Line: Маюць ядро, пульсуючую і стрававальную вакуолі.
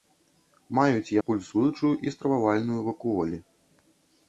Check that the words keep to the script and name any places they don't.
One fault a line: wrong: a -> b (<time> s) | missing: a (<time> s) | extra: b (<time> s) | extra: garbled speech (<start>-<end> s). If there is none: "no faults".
missing: ядро (1.1 s)